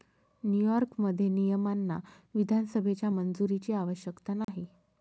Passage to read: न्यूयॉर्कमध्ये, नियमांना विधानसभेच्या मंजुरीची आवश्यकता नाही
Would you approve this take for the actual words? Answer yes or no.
yes